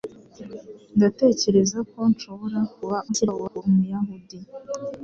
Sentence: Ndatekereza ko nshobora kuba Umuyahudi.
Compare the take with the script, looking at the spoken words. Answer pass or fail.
fail